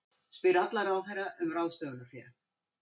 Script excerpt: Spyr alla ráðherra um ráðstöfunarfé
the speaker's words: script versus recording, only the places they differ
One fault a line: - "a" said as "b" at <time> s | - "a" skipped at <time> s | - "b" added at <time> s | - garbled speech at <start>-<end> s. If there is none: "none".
none